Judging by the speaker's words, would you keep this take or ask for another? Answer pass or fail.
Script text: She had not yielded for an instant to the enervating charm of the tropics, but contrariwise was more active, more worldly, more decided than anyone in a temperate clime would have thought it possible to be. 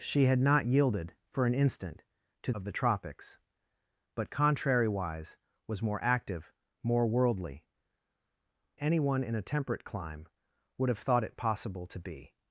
fail